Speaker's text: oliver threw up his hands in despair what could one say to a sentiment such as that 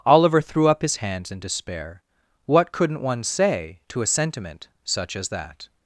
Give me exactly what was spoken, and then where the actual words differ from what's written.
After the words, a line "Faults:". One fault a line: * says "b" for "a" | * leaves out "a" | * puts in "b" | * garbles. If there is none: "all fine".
oliver threw up his hands in despair what couldn't one say to a sentiment such as that
Faults:
* says "couldn't" for "could"